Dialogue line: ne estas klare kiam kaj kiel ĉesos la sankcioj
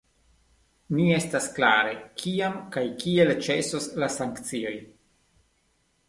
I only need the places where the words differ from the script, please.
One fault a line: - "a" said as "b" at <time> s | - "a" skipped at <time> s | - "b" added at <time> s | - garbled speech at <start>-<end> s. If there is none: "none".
none